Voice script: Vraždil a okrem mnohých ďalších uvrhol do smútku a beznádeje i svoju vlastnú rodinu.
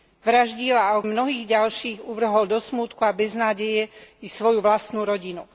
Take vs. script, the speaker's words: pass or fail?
fail